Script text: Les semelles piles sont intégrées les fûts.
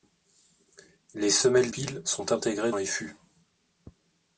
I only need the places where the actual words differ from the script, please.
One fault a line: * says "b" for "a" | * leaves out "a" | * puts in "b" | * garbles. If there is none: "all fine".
all fine